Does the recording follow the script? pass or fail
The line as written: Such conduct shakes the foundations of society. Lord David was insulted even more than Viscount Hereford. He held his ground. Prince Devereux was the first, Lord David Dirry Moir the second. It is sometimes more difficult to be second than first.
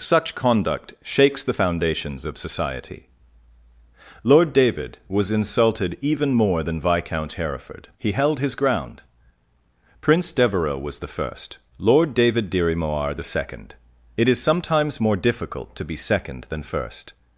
pass